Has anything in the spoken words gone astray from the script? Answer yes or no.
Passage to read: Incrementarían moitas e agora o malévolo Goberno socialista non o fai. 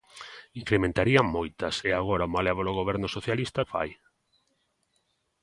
yes